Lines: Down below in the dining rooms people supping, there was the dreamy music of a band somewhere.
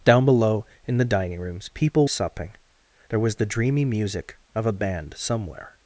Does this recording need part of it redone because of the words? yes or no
no